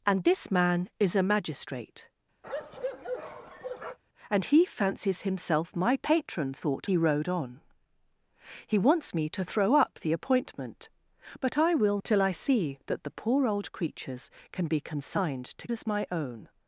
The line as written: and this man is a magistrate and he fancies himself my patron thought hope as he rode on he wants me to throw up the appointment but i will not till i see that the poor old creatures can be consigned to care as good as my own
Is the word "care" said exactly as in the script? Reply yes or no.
no